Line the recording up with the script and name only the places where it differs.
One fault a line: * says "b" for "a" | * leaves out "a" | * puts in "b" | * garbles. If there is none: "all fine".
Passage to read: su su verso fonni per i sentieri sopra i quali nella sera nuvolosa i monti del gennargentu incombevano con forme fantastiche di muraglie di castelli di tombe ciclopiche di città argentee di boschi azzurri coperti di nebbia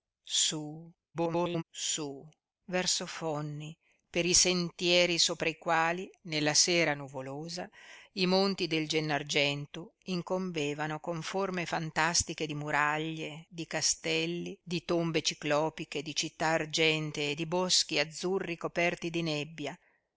* garbles